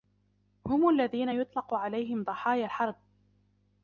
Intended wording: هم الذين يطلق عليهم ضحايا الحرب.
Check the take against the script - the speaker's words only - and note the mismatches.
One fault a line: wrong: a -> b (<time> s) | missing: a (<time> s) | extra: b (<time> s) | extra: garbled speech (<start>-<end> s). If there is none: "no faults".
no faults